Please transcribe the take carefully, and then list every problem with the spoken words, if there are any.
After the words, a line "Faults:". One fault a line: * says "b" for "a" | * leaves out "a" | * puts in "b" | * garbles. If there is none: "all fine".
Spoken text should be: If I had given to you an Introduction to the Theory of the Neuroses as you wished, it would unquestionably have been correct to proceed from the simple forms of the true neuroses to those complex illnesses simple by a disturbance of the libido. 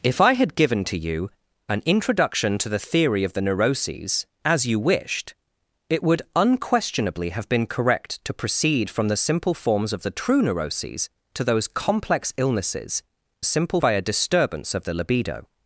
If I had given to you an Introduction to the Theory of the Neuroses as you wished, it would unquestionably have been correct to proceed from the simple forms of the true neuroses to those complex illnesses simple by a disturbance of the libido.
Faults:
all fine